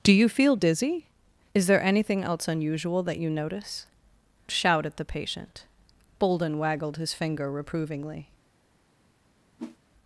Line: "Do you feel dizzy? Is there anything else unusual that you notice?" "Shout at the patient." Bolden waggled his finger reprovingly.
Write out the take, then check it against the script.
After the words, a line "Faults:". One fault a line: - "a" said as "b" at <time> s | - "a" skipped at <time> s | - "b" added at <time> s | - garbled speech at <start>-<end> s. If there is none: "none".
"Do you feel dizzy? Is there anything else unusual that you notice?" "Shout at the patient." Bolden waggled his finger reprovingly.
Faults:
none